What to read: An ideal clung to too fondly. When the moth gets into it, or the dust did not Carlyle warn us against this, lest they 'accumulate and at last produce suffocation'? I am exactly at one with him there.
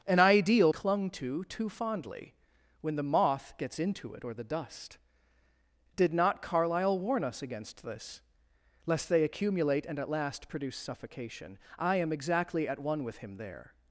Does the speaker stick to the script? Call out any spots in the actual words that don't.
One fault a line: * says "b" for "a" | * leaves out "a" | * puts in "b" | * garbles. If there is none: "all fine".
all fine